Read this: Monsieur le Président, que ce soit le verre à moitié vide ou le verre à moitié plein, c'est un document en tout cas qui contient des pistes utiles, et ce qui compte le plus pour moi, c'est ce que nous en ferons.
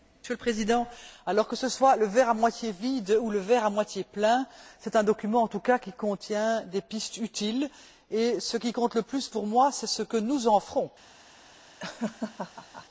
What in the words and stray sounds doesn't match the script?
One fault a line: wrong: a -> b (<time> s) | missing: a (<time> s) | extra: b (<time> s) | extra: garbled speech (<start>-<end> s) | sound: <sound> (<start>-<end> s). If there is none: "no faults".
sound: laugh (11.8-12.9 s)